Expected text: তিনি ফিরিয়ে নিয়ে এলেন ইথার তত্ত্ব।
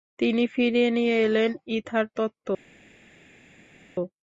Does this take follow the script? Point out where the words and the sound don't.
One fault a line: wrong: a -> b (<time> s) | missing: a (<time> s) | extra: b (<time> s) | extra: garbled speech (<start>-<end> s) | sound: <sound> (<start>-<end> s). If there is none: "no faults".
no faults